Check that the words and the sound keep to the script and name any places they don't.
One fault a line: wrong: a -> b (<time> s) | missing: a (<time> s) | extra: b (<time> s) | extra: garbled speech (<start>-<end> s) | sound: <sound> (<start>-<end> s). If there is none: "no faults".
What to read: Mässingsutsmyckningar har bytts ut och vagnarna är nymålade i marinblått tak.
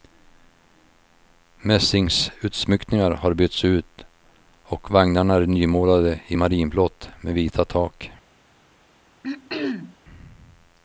extra: med vita (7.2 s)
sound: throat clearing (9.2-10.0 s)